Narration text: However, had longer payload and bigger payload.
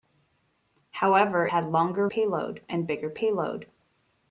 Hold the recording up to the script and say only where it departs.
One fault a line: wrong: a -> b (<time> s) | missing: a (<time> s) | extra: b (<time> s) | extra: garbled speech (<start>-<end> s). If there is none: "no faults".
no faults